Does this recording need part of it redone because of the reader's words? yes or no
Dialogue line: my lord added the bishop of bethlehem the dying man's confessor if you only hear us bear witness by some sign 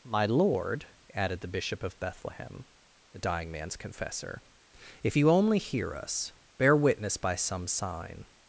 no